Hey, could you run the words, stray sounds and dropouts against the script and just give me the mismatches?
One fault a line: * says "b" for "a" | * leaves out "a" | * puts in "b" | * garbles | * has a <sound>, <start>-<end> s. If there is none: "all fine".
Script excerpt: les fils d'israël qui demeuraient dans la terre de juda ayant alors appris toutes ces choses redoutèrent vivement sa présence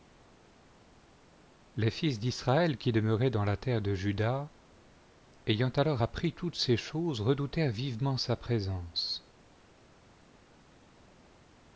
all fine